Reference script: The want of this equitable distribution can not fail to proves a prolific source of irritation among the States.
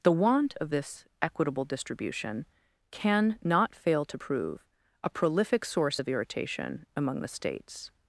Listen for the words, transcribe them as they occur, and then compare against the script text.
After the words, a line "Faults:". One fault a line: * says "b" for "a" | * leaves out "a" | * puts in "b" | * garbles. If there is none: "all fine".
The want of this equitable distribution can not fail to prove a prolific source of irritation among the States.
Faults:
* says "prove" for "proves"